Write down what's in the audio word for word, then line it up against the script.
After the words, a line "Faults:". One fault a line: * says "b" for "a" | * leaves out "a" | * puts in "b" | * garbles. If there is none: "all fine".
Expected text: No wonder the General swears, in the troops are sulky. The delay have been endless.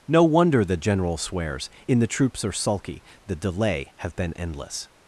No wonder the General swears, in the troops are sulky. The delay have been endless.
Faults:
all fine